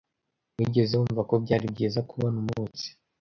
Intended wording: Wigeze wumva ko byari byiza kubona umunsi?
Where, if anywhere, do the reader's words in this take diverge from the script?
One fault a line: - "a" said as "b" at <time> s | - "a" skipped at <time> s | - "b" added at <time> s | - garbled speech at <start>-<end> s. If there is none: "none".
none